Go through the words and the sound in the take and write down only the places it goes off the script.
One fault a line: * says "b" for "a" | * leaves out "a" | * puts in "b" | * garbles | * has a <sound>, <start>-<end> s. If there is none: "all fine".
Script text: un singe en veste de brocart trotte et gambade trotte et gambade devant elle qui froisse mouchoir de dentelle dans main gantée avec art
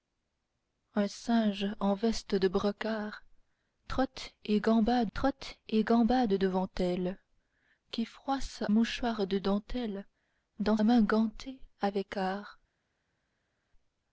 all fine